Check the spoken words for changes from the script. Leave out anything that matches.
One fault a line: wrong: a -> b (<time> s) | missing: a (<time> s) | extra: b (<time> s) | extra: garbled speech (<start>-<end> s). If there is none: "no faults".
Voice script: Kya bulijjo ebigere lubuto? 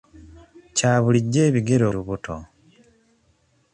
no faults